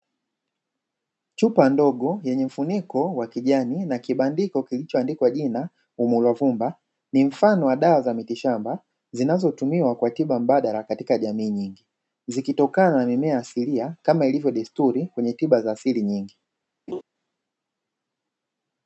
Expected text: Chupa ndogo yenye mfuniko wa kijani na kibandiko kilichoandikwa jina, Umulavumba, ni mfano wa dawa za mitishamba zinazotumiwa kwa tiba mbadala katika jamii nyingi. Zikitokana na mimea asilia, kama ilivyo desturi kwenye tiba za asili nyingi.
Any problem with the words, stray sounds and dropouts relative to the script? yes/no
yes